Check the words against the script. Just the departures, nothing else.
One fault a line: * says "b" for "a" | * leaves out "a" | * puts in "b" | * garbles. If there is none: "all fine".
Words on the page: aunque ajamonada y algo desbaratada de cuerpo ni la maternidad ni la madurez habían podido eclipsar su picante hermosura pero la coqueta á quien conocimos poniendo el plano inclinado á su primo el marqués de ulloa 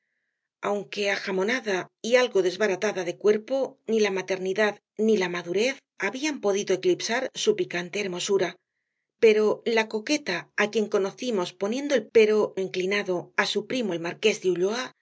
* says "pero" for "plano"